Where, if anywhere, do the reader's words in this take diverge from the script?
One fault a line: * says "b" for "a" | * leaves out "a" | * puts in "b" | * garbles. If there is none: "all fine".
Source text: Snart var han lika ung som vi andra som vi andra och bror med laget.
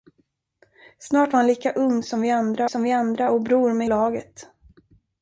all fine